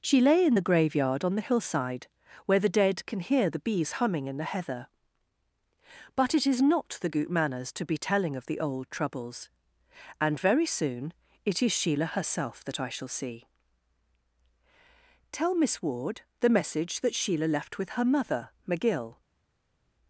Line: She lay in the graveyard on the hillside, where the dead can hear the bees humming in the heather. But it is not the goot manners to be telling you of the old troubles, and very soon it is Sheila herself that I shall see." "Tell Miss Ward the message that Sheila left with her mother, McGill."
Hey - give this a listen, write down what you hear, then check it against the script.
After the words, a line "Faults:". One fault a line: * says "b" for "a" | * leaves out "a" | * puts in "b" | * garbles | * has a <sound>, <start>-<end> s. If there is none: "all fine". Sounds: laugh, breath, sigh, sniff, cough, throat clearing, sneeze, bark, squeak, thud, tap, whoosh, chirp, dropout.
She lay in the graveyard on the hillside, where the dead can hear the bees humming in the heather. But it is not the goot manners to be telling of the old troubles, and very soon it is Sheila herself that I shall see." "Tell Miss Ward the message that Sheila left with her mother, McGill."
Faults:
* leaves out "you"